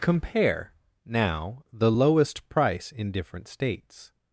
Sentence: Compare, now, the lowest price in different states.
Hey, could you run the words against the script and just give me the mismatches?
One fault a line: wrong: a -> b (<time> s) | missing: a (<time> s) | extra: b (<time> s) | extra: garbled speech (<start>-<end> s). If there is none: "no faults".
no faults